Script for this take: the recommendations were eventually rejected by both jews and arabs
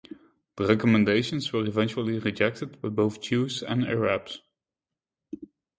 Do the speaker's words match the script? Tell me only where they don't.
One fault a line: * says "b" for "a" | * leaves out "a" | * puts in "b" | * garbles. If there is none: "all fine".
all fine